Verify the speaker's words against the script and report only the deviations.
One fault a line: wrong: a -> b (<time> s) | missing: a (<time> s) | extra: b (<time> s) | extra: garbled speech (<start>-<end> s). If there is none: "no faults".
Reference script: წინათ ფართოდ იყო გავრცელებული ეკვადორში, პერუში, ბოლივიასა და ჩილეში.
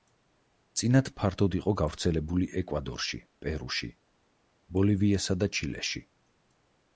no faults